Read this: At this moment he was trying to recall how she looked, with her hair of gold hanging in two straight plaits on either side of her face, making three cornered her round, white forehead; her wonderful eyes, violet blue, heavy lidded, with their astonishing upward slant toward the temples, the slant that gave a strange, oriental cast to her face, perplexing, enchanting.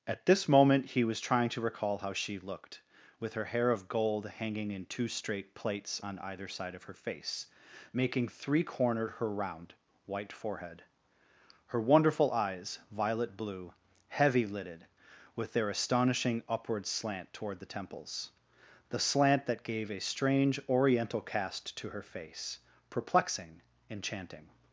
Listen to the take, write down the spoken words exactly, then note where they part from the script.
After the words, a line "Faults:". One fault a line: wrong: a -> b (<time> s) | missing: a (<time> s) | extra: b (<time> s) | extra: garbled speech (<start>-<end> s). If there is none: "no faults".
At this moment he was trying to recall how she looked, with her hair of gold hanging in two straight plaits on either side of her face, making three cornered her round, white forehead; her wonderful eyes, violet blue, heavy lidded, with their astonishing upward slant toward the temples, the slant that gave a strange, oriental cast to her face, perplexing, enchanting.
Faults:
no faults